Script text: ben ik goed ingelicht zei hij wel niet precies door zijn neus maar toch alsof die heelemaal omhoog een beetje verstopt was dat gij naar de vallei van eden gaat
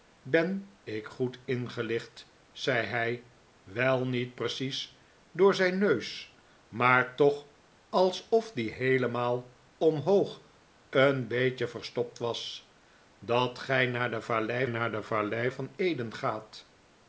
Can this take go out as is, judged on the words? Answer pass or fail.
fail